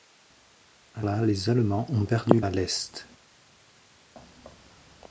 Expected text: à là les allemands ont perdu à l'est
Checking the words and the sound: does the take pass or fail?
pass